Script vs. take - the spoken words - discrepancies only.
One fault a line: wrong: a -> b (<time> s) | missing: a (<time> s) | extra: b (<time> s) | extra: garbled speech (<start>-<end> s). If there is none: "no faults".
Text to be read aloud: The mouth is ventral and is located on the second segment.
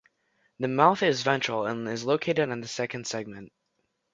no faults